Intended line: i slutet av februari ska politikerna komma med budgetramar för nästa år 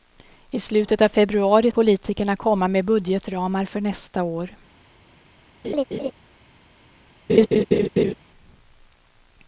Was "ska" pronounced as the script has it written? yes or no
no